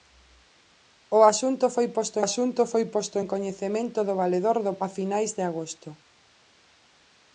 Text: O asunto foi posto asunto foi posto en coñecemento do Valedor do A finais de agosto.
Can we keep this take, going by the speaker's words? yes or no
yes